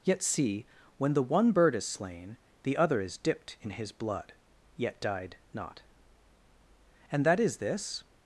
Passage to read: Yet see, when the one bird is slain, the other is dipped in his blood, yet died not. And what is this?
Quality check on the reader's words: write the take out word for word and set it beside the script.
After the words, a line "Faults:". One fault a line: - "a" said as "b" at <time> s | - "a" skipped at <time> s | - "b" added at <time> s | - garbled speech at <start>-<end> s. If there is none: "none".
Yet see, when the one bird is slain, the other is dipped in his blood, yet died not. And that is this?
Faults:
- "what" said as "that" at 7.2 s